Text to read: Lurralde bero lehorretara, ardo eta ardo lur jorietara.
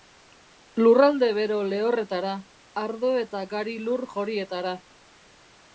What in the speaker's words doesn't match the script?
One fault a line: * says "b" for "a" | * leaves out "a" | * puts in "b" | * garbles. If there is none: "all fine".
* says "gari" for "ardo"